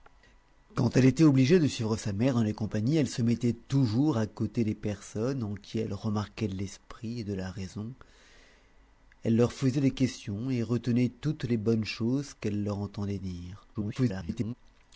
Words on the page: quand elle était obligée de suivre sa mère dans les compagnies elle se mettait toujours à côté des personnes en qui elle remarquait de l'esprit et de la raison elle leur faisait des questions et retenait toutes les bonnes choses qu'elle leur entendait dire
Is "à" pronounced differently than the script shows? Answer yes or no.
no